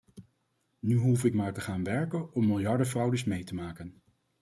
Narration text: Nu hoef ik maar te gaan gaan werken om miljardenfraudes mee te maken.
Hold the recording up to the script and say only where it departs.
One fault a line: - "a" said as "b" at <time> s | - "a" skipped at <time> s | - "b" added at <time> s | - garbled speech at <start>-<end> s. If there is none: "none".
- "gaan" skipped at 1.8 s